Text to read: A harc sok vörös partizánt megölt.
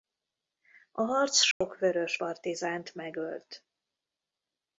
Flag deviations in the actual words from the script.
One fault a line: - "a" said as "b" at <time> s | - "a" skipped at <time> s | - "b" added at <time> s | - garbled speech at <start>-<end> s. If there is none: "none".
none